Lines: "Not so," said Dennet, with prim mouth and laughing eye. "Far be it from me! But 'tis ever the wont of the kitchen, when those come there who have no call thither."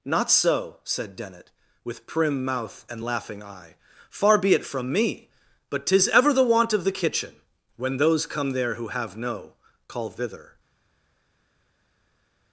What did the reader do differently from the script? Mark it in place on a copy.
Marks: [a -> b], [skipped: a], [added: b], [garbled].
"Not so," said Dennet, with prim mouth and laughing eye. "Far be it from me! But 'tis ever the wont of the kitchen, when those come there who have no call thither."